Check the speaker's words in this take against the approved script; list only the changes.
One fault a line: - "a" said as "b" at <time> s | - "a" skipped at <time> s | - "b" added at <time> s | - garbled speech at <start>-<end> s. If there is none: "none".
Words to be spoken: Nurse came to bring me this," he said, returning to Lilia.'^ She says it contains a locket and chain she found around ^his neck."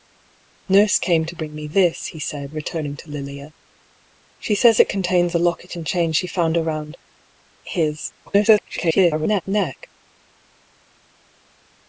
- garbled speech at 8.3-9.4 s